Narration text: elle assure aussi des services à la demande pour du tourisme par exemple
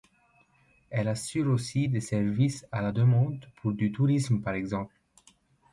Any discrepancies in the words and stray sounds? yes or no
no